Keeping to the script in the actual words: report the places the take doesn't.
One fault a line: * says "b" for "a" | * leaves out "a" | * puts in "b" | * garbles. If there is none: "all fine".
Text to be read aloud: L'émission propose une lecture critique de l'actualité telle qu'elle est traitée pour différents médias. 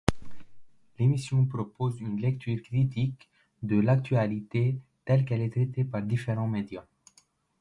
* says "par" for "pour"